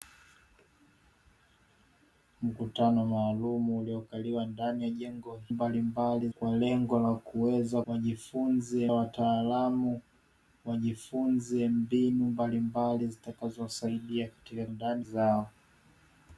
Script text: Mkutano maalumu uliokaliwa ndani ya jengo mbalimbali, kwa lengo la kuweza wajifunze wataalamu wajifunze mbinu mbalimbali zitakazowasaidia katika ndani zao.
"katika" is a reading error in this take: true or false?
false